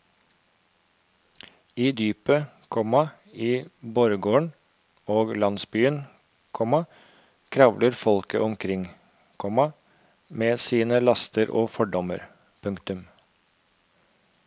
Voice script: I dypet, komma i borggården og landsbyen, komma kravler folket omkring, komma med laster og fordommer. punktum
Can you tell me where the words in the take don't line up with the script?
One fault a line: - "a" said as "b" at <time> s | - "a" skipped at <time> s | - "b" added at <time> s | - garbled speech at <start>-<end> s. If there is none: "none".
- "sine" added at 10.6 s